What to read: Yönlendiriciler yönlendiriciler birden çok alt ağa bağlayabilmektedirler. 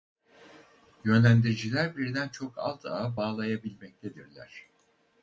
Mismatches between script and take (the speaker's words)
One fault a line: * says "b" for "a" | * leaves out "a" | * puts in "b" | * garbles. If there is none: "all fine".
* leaves out "yönlendiriciler"